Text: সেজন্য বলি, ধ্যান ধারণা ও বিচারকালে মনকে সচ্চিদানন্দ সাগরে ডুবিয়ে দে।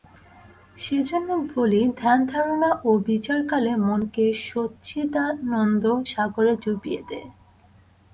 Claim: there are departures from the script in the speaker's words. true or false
false